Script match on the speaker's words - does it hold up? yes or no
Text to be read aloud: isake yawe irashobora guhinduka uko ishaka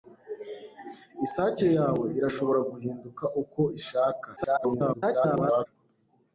no